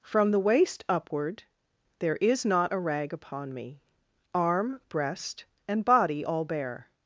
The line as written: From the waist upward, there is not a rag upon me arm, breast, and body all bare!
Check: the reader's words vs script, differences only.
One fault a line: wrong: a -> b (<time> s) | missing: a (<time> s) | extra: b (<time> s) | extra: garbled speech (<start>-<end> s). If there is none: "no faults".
no faults